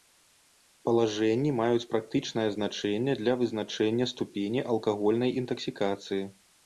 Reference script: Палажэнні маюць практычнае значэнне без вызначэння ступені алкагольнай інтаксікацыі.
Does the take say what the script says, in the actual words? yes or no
no